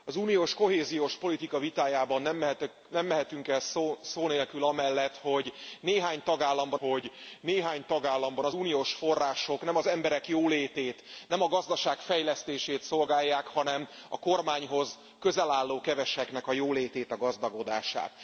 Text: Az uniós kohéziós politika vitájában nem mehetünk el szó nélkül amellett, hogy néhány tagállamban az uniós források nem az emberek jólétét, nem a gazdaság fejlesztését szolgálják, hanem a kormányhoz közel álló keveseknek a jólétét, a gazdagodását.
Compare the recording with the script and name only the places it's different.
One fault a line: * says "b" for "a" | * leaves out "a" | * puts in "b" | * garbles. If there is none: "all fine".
* puts in "hogy néhány tagállamban"